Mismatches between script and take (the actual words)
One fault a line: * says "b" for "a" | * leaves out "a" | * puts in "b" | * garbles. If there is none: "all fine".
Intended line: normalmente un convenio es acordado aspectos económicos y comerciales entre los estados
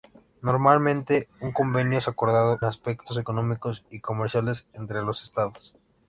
all fine